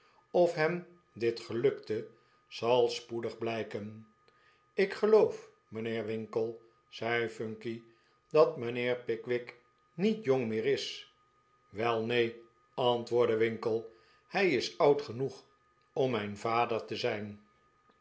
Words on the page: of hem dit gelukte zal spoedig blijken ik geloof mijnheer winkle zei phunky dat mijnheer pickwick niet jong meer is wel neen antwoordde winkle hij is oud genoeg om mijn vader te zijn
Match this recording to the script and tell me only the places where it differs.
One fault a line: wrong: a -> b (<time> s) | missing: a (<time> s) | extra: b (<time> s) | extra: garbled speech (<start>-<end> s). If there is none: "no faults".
no faults